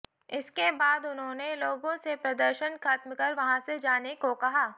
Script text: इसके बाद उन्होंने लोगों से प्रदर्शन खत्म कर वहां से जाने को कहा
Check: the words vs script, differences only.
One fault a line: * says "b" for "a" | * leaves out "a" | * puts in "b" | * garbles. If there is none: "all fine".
all fine